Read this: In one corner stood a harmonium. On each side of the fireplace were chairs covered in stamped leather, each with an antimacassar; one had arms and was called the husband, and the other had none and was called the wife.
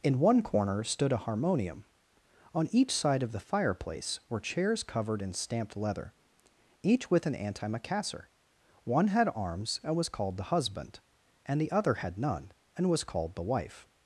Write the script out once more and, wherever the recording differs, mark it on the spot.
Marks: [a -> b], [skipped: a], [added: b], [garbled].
In one corner stood a harmonium. On each side of the fireplace were chairs covered in stamped leather, each with an antimacassar; one had arms and was called the husband, and the other had none and was called the wife.